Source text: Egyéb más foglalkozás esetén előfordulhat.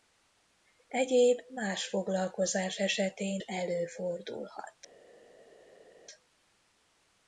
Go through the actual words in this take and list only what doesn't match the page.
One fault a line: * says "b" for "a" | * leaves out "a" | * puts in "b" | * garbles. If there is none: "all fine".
all fine